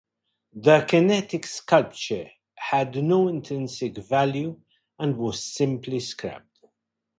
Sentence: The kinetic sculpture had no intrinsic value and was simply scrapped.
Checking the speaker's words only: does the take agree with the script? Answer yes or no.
yes